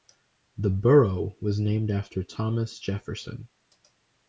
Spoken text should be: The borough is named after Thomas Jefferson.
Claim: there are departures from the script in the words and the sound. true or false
true